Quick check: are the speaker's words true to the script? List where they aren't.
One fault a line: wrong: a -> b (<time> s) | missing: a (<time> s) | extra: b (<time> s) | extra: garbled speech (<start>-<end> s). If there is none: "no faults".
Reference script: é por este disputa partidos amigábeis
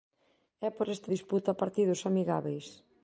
no faults